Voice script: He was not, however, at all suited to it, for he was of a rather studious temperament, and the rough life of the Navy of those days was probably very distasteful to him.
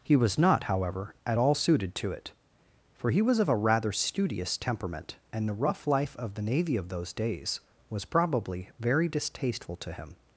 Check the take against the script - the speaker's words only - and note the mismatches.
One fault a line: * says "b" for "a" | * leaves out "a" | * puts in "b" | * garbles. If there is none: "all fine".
all fine